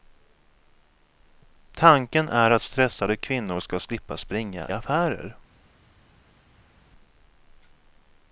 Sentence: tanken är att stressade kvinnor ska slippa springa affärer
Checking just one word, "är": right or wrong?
right